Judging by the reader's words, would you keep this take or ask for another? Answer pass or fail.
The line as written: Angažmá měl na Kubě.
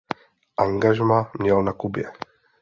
pass